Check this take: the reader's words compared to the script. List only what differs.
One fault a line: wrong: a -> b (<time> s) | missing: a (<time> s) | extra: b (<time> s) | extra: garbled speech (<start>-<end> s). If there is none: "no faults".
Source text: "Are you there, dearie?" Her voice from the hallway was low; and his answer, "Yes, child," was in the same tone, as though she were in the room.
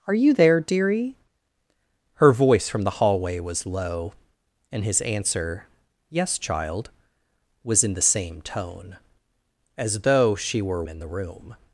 no faults